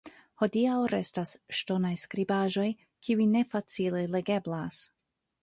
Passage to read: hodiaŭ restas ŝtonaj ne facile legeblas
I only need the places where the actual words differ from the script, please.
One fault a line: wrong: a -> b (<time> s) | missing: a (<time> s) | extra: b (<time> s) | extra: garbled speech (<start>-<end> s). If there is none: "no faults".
extra: skribaĵoj kiuj (2.0 s)